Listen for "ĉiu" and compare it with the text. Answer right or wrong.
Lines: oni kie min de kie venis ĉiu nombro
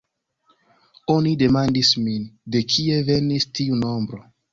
wrong